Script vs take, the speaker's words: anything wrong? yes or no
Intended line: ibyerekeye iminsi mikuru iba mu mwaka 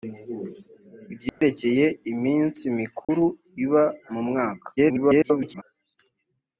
yes